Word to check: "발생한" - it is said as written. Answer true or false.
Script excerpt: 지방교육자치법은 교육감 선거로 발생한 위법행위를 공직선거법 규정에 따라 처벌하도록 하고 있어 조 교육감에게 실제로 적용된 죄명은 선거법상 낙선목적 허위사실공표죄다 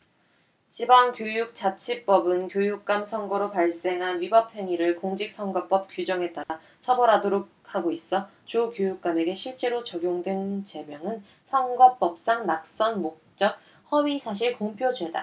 true